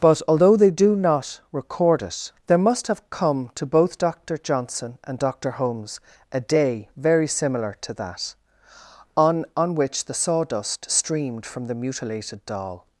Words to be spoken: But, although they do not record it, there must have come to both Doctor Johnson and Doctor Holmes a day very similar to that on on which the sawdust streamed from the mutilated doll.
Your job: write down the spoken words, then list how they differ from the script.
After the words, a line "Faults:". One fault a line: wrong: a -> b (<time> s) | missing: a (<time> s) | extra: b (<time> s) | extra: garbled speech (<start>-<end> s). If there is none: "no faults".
But, although they do not record it, there must have come to both Doctor Johnson and Doctor Holmes a day very similar to that on on which the sawdust streamed from the mutilated doll.
Faults:
no faults